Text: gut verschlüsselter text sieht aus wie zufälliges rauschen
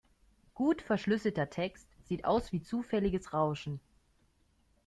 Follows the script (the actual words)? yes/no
yes